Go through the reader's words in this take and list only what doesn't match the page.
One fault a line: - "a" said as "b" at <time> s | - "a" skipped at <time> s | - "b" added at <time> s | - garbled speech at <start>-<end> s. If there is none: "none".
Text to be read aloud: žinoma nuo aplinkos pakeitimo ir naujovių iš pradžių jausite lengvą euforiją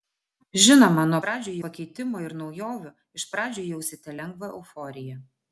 - "aplinkos" said as "pradžių" at 1.2 s